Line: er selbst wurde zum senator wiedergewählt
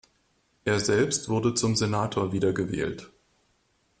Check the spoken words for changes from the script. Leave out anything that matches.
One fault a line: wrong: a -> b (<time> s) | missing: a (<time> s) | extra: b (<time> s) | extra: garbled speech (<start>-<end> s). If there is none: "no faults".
no faults